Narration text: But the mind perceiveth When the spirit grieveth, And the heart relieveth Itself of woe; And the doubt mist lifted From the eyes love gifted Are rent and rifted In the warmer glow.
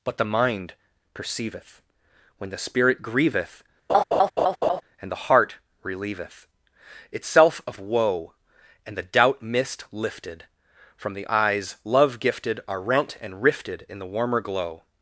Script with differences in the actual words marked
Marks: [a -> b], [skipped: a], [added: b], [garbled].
But the mind perceiveth When the spirit grieveth, And the heart relieveth Itself of woe; And the doubt mist lifted From the eyes love gifted Are rent and rifted In the warmer glow.